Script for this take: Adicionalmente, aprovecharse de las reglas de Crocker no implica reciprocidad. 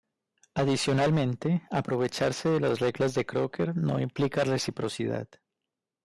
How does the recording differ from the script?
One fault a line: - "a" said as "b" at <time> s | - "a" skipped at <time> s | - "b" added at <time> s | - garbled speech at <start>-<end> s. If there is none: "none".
none